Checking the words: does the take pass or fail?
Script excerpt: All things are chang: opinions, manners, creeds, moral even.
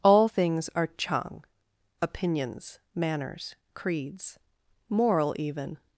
pass